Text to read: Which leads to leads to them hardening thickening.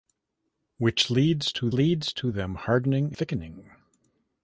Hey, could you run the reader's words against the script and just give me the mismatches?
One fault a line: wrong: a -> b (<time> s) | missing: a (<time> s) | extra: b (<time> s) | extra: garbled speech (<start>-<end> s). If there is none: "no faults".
no faults